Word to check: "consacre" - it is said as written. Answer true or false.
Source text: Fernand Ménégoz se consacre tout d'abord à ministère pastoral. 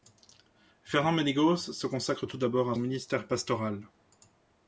true